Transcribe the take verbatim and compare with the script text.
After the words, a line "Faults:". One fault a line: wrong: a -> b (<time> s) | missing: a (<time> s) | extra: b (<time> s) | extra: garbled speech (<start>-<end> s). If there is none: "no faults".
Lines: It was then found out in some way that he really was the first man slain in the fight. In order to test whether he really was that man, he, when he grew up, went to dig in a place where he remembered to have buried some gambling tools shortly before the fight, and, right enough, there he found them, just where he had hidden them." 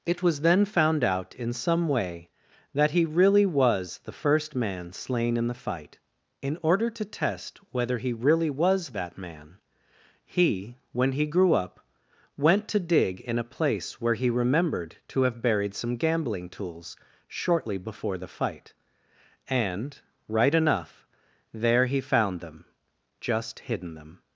It was then found out in some way that he really was the first man slain in the fight. In order to test whether he really was that man, he, when he grew up, went to dig in a place where he remembered to have buried some gambling tools shortly before the fight, and, right enough, there he found them, just hidden them."
Faults:
missing: where he had (23.6 s)